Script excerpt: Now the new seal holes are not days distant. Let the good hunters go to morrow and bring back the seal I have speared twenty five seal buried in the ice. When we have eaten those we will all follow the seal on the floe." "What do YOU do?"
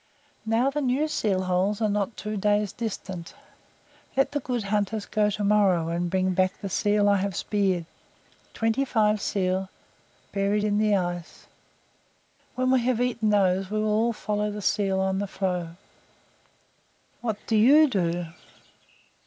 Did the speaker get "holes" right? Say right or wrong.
right